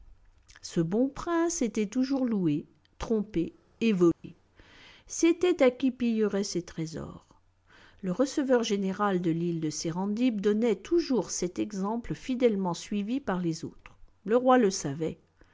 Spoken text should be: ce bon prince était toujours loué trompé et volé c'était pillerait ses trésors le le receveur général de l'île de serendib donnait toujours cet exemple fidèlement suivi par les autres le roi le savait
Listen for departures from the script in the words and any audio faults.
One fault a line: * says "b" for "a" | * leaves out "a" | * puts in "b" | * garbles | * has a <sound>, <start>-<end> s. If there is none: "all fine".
* has a dropout, 4.1-4.2 s
* puts in "à qui"
* leaves out "le"